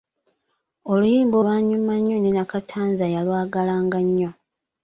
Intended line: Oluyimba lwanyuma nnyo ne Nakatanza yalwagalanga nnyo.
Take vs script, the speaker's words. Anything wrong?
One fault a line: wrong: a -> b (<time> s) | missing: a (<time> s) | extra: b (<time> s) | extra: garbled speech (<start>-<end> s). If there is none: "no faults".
no faults